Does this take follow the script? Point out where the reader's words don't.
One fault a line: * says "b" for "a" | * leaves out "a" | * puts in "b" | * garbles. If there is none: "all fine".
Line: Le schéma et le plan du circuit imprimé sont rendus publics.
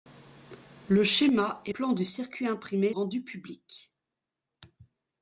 * leaves out "le"
* leaves out "sont"